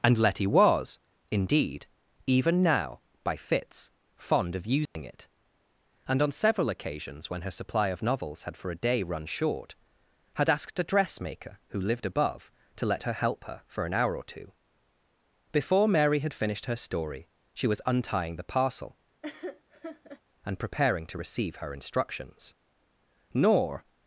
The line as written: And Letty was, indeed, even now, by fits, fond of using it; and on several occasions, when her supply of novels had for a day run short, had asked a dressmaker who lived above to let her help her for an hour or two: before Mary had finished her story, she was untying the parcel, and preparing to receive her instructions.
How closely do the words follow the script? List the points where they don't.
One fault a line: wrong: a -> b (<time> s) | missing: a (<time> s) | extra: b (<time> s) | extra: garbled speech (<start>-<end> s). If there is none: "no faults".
extra: Nor (23.3 s)